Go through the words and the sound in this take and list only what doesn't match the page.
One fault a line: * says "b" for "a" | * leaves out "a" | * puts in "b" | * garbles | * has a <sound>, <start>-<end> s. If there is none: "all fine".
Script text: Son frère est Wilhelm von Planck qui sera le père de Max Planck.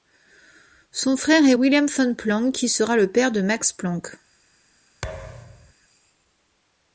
* has a thud, 5.0-5.7 s